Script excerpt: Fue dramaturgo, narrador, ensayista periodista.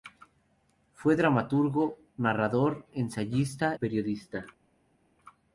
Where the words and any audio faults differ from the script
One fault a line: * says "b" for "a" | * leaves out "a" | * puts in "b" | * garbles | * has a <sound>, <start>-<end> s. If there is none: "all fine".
all fine